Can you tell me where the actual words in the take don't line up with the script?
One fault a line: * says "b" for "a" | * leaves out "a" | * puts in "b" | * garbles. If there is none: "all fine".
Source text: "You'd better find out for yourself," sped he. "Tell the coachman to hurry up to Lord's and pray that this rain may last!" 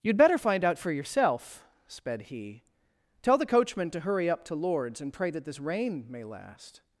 all fine